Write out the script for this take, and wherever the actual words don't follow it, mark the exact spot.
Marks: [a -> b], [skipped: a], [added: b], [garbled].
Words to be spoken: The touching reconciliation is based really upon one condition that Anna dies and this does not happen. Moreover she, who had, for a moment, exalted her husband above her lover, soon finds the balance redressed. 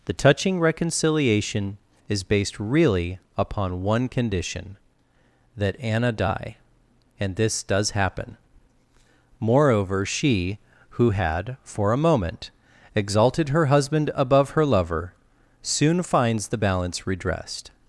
The touching reconciliation is based really upon one condition that Anna [dies -> die] and this does [skipped: not] happen. Moreover she, who had, for a moment, exalted her husband above her lover, soon finds the balance redressed.